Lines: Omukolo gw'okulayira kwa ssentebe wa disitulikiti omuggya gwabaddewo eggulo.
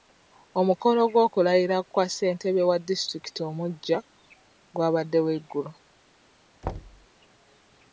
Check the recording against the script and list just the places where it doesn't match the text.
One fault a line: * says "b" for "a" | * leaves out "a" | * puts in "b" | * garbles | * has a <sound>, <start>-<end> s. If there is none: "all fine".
* has a thud, 6.6-7.1 s